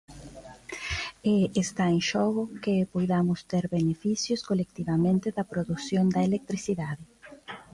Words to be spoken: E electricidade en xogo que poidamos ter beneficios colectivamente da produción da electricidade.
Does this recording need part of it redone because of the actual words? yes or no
yes